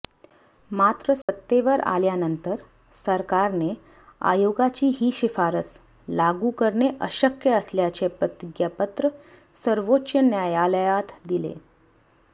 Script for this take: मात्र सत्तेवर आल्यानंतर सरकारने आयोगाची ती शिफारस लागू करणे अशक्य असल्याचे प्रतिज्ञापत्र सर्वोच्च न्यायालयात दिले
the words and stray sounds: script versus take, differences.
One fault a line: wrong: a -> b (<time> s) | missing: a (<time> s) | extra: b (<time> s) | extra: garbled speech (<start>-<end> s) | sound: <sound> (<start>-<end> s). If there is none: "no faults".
sound: dropout (1.2-1.3 s)
wrong: ती -> ही (4.9 s)